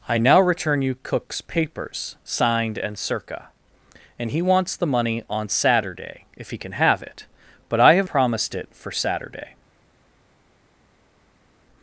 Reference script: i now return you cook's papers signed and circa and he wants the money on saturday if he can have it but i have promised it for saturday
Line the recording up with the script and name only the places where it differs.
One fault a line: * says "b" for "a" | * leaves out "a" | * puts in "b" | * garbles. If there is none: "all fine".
all fine